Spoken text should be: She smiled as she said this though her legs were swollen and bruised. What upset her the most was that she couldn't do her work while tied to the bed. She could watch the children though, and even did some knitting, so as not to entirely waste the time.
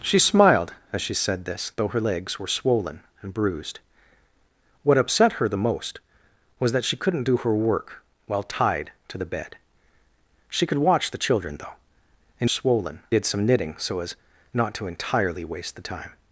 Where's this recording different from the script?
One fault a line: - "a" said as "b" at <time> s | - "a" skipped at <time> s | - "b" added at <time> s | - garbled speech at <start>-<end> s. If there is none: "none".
- "even" said as "swollen" at 12.5 s